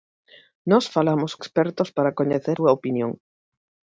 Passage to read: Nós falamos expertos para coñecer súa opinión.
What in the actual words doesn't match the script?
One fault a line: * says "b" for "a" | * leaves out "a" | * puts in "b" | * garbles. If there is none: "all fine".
all fine